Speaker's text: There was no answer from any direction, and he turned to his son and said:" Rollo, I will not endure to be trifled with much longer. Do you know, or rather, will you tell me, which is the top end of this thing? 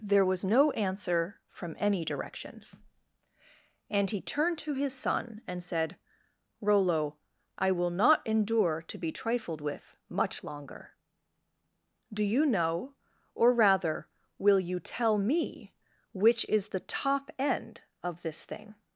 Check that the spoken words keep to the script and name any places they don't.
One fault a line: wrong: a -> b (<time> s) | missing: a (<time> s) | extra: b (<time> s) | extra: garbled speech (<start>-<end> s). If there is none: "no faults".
no faults